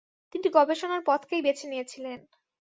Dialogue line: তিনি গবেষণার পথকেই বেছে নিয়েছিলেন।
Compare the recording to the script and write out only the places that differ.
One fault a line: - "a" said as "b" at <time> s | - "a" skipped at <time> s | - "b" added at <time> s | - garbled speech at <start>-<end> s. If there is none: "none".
none